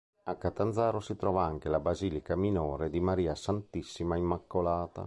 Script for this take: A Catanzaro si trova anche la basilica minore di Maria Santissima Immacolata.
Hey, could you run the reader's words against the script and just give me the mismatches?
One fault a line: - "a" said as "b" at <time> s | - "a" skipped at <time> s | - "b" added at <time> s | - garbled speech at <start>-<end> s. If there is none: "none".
none